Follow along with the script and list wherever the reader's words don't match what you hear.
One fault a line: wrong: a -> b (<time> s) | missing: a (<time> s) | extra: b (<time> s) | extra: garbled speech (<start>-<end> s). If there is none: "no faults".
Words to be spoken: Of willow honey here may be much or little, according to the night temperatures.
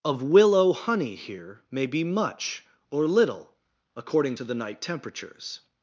no faults